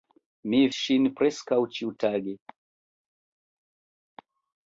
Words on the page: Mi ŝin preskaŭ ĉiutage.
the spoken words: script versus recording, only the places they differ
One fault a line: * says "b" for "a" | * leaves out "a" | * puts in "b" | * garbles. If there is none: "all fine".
all fine